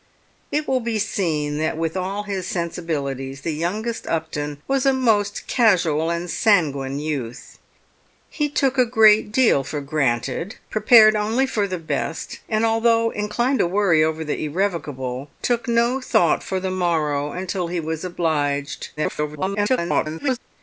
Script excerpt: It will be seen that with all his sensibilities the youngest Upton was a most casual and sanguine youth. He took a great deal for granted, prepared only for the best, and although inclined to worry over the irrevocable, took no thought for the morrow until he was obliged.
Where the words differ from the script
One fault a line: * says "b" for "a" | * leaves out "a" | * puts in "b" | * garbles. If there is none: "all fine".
* garbles